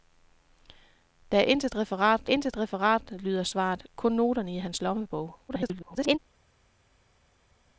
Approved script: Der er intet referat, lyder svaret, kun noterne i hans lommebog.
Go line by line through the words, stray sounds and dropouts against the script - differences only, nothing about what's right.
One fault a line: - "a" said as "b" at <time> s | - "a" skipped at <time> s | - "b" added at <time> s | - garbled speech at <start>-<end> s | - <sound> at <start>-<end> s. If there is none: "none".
- "intet referat" added at 2.2 s
- garbled speech at 5.5-6.2 s